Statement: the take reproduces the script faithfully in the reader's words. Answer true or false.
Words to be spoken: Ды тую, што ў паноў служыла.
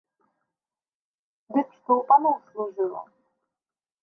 false